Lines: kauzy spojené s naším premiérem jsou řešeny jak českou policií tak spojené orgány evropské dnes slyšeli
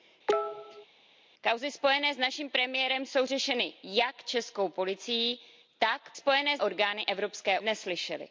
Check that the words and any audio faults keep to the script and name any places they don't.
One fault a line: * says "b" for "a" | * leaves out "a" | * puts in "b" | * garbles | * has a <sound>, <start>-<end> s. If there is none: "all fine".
* has a cough, 0.3-0.9 s